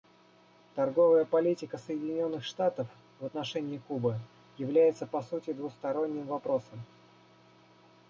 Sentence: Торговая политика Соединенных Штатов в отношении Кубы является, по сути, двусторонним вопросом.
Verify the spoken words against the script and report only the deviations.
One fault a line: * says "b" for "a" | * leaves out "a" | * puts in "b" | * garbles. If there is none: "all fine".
all fine